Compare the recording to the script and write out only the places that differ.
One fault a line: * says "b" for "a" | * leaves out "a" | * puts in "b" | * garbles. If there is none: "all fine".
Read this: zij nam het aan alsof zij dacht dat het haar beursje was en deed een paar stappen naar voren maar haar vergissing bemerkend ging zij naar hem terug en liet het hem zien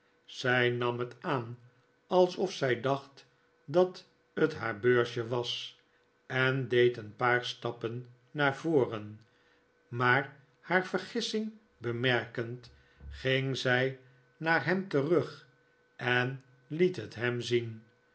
all fine